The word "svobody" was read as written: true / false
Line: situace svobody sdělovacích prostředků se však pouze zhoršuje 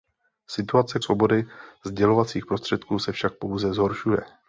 true